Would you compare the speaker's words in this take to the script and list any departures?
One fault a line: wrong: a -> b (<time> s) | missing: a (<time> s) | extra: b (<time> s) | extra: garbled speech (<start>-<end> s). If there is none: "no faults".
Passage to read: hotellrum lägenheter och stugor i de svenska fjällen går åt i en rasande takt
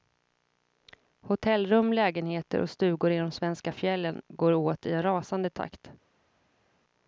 no faults